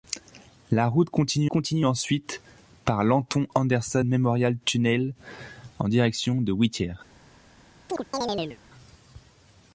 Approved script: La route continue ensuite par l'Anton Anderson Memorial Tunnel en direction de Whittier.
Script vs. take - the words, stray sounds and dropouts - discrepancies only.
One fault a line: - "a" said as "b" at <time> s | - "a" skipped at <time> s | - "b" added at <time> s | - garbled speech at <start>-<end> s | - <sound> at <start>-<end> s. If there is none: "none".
- "continue" added at 1.5 s
- chirp at 7.9-8.6 s